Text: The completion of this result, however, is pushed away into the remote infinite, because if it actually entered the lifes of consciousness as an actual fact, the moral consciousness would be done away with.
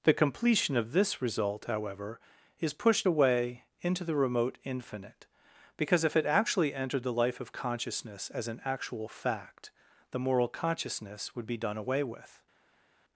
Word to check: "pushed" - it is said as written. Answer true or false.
true